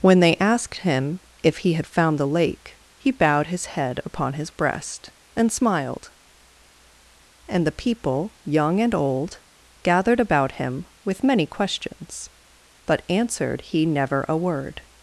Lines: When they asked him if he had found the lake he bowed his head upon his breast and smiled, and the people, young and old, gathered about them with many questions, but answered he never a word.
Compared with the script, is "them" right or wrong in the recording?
wrong